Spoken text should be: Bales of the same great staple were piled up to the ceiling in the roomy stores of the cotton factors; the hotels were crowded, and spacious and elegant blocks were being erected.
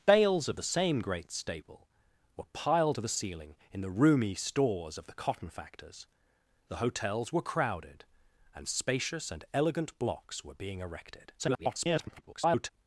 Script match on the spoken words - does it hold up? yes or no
no